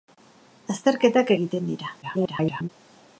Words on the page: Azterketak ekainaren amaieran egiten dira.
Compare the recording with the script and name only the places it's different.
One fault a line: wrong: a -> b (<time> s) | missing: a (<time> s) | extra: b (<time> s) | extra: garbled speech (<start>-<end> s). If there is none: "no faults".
missing: ekainaren amaieran (1.3 s)
extra: garbled speech (2.0-2.7 s)